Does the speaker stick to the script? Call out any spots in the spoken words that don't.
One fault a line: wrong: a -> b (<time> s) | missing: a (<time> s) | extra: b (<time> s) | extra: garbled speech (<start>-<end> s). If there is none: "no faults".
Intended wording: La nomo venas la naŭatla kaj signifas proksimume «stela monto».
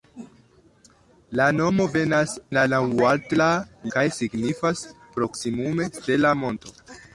no faults